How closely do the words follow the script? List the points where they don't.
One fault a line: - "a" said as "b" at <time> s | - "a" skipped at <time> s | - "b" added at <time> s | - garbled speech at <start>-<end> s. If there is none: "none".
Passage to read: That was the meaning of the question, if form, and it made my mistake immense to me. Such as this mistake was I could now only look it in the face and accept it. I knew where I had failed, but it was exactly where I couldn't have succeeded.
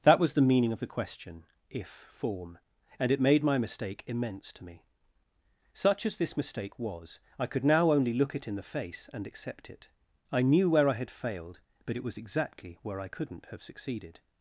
none